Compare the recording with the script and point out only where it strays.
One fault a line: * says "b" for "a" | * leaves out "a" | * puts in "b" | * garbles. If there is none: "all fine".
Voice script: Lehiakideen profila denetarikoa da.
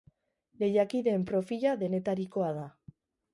all fine